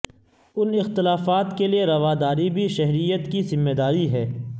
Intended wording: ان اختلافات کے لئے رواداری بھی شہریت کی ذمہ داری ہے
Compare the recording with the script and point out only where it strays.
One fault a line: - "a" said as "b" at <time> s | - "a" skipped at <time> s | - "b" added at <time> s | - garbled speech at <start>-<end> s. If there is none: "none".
none